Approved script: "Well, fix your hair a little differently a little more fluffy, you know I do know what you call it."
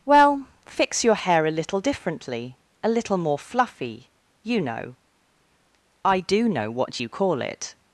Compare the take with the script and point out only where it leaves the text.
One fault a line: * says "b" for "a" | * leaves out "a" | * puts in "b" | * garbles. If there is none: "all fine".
all fine